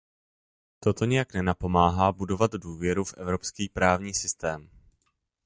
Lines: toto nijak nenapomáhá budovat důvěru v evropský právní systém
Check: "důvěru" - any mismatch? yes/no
no